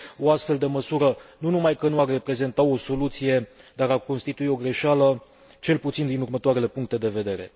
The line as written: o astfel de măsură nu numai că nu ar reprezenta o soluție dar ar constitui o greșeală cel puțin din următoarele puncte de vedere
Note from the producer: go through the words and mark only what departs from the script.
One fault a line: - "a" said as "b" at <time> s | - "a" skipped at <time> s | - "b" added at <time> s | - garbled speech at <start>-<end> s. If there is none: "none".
none